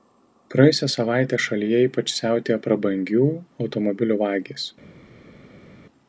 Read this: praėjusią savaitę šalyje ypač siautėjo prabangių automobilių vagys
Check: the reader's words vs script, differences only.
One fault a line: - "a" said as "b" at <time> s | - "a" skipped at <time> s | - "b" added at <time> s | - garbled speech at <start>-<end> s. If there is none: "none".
none